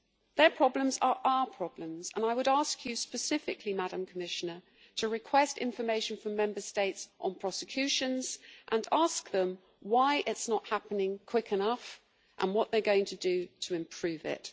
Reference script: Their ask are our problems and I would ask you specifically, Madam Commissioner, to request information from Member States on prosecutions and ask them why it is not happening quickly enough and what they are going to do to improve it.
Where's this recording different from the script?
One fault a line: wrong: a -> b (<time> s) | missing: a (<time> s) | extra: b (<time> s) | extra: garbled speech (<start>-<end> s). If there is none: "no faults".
wrong: ask -> problems (0.5 s)